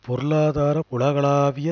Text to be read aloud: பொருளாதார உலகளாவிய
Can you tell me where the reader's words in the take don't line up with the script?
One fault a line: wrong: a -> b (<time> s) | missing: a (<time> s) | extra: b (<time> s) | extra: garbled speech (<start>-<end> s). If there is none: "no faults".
no faults